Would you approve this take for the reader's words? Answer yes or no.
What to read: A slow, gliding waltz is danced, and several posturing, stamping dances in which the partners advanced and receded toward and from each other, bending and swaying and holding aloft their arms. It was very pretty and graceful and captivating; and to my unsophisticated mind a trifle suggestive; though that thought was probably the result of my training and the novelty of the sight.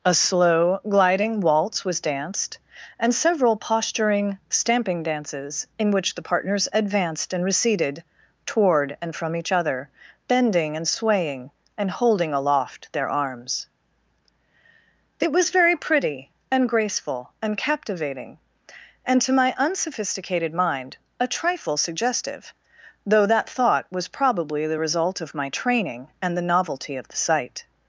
no